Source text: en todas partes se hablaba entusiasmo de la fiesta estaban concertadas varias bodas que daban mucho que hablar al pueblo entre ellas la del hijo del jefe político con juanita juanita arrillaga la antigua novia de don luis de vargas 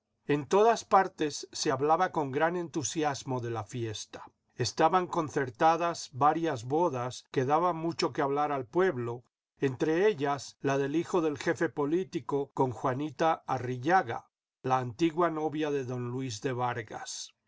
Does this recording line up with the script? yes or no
no